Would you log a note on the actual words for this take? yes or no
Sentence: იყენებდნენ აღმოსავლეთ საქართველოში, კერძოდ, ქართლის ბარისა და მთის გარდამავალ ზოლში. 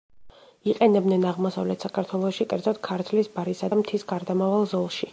no